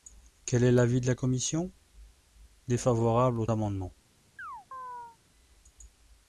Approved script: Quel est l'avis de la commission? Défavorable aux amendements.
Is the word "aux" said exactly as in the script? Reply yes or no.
yes